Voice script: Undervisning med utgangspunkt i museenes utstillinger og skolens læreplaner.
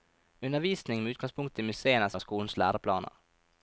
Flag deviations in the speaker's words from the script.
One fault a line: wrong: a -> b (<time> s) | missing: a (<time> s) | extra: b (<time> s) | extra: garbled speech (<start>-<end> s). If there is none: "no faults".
missing: utstillinger (2.2 s)